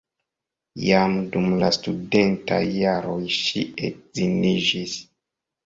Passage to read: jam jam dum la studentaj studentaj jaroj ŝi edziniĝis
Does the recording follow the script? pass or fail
fail